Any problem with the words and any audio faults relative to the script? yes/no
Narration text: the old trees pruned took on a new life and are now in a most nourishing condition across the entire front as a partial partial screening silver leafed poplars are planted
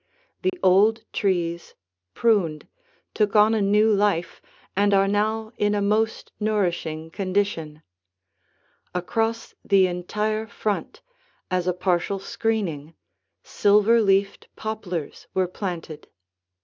yes